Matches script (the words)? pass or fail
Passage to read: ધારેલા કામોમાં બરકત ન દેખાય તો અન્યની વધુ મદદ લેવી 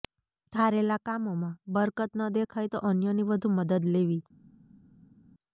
pass